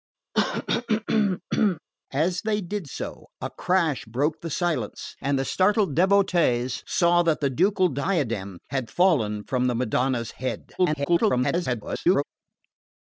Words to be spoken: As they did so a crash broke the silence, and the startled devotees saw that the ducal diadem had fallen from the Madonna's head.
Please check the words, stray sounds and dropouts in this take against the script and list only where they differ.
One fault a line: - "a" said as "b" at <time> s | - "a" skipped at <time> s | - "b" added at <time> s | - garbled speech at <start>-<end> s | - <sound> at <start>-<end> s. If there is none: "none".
- throat clearing at 0.3-1.8 s
- garbled speech at 10.8-12.2 s